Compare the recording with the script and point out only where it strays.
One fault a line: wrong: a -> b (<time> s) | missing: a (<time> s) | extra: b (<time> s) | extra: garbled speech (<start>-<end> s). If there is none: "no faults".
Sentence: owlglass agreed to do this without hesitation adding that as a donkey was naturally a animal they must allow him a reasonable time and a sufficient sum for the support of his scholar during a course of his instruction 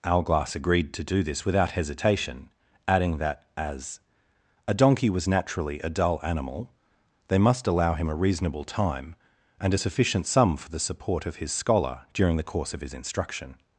extra: dull (5.9 s)
wrong: a -> the (12.4 s)